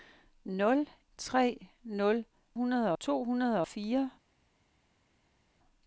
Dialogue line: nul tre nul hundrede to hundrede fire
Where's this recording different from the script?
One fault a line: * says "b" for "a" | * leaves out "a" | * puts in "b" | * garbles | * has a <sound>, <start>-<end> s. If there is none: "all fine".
all fine